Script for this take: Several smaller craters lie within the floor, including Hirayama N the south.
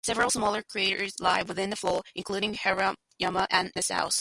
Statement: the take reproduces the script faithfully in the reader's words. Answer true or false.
true